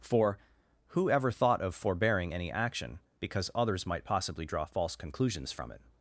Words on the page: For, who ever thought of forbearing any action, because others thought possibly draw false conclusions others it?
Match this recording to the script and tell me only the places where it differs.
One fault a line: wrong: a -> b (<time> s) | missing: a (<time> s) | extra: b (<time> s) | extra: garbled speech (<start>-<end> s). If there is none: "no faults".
wrong: thought -> might (3.9 s)
wrong: others -> from (5.5 s)